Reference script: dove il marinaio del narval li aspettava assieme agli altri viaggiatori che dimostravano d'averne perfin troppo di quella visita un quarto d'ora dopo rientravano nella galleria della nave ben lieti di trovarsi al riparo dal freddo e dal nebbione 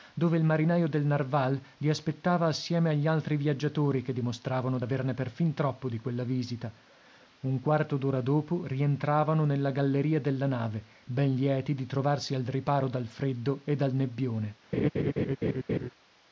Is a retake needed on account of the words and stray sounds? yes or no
yes